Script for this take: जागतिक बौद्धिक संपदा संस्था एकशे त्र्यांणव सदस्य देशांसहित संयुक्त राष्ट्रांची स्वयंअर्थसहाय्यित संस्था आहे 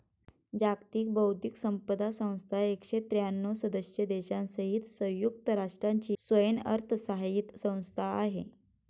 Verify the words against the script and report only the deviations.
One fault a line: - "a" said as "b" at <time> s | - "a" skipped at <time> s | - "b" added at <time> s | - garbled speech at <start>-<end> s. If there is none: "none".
none